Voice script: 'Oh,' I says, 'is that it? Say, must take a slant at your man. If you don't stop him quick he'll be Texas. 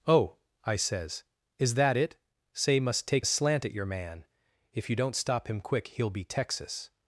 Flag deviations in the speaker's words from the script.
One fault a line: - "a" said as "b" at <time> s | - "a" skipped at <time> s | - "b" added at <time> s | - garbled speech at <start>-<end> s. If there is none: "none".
none